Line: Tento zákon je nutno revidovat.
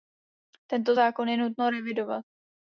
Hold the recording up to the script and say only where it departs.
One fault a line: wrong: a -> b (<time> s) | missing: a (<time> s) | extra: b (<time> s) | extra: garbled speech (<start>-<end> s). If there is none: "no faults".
no faults